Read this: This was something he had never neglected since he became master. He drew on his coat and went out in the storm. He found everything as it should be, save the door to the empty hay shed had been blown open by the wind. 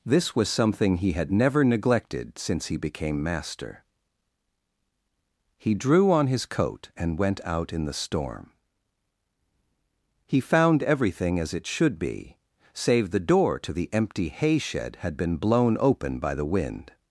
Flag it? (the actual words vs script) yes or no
no